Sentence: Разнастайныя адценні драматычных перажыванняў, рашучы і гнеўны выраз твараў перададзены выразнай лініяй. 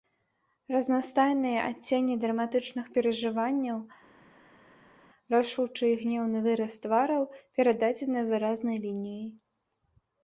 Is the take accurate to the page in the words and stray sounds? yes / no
yes